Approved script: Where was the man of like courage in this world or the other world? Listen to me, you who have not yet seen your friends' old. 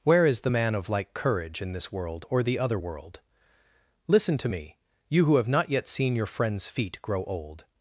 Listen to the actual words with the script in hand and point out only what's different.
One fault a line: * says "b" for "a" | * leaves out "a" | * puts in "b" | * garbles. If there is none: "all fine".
* says "is" for "was"
* puts in "feet grow"